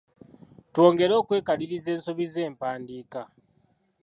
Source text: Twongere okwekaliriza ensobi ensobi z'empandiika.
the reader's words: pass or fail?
fail